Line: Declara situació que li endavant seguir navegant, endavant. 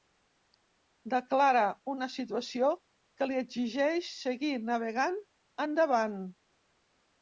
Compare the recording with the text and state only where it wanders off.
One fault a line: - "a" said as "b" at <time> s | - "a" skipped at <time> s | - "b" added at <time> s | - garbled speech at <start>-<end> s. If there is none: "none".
- "una" added at 1.9 s
- "endavant" said as "exigeix" at 3.5 s